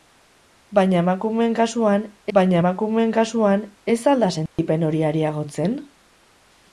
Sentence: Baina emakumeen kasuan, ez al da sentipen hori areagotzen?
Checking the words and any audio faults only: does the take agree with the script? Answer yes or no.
no